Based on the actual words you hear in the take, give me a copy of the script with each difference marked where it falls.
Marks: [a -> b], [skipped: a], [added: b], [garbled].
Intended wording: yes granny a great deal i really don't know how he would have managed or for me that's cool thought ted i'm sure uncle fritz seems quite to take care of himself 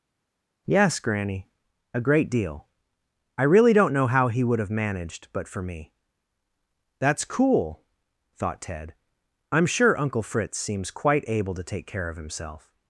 yes granny a great deal i really don't know how he would have managed [or -> but] for me that's cool thought ted i'm sure uncle fritz seems quite [added: able] to take care of himself